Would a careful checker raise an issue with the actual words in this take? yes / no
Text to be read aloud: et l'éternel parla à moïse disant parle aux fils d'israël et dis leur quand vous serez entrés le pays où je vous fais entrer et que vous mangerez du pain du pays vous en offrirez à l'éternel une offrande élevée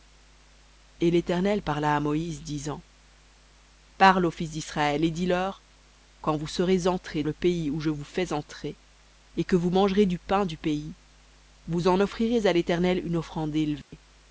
no